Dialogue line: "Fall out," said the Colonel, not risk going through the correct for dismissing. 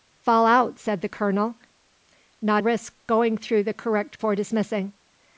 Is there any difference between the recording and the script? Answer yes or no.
no